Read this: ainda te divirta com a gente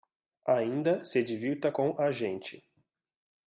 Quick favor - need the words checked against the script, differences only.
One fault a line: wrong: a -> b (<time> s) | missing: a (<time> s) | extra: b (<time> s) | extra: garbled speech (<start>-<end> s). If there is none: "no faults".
wrong: te -> se (1.1 s)